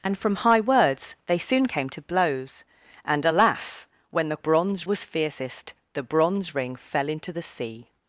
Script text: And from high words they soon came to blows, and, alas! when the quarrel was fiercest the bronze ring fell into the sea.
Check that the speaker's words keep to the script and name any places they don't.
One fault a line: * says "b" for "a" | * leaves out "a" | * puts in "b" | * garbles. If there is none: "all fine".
* says "bronze" for "quarrel"